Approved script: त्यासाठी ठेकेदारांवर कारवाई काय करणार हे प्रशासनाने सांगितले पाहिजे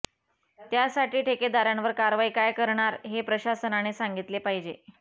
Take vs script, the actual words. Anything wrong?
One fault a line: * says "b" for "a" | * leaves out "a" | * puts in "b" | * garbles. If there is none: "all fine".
all fine